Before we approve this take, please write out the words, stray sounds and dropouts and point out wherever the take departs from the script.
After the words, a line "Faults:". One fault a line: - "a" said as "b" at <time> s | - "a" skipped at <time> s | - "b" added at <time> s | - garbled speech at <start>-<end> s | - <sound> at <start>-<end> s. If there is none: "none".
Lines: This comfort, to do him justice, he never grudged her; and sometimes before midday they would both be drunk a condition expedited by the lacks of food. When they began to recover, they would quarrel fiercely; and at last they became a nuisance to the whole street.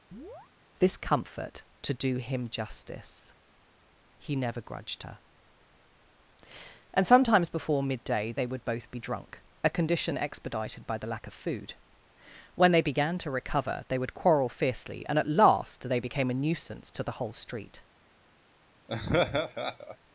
This comfort, to do him justice, he never grudged her; and sometimes before midday they would both be drunk a condition expedited by the lack of food. When they began to recover, they would quarrel fiercely; and at last they became a nuisance to the whole street.
Faults:
- chirp at 0.1-0.5 s
- "lacks" said as "lack" at 11.0 s
- laugh at 18.9-20.0 s